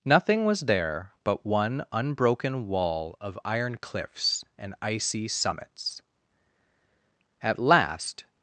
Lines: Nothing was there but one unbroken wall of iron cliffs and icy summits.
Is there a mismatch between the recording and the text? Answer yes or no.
yes